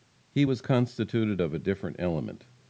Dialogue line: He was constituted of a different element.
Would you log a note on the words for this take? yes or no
no